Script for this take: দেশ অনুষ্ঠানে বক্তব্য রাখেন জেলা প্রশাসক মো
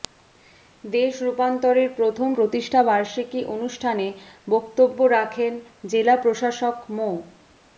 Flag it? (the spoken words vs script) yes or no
yes